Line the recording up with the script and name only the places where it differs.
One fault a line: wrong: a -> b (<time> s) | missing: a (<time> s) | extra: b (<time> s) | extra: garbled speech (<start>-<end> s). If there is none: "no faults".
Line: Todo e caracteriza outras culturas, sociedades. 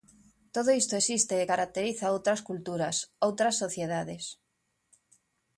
extra: isto existe (0.8 s)
extra: outras (3.3 s)